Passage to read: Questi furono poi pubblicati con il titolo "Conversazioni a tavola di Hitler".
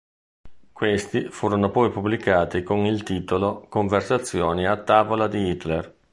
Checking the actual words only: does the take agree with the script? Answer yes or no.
yes